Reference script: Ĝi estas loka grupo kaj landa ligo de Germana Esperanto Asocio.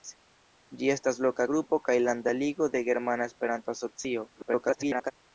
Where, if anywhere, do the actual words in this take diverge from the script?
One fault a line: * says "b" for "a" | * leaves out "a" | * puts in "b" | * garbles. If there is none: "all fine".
* garbles